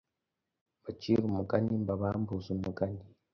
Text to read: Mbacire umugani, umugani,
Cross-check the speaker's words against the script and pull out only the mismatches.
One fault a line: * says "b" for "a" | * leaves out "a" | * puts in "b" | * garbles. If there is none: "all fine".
* puts in "mbabambuze"